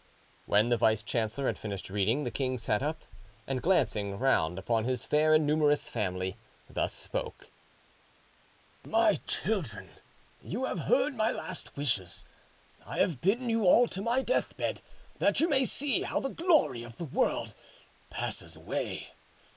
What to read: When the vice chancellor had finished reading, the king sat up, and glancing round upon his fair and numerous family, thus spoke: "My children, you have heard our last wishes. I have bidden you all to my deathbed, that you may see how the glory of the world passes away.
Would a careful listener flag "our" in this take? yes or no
yes